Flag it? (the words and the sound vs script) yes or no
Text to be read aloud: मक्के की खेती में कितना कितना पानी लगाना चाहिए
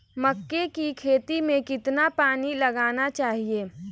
yes